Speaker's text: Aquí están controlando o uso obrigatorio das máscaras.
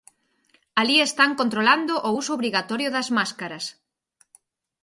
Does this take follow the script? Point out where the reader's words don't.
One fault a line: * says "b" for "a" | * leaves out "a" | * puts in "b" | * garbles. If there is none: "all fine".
* says "Alí" for "Aquí"